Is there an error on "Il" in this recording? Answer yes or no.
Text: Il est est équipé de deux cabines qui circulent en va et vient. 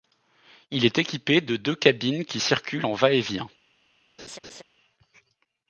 no